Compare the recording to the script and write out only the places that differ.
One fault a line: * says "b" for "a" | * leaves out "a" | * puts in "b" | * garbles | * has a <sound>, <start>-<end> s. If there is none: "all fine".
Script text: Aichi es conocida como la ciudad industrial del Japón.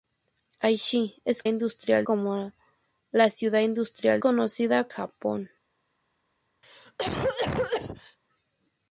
* says "industrial" for "conocida"
* says "conocida" for "del"
* has a cough, 6.6-8.2 s